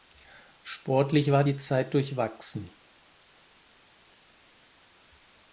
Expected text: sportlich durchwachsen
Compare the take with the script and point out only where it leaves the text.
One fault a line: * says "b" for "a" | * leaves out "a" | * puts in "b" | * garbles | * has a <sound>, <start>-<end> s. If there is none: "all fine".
* puts in "war die zeit"